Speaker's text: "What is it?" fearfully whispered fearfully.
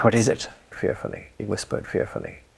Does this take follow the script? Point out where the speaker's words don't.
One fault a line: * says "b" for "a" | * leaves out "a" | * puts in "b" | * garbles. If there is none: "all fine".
all fine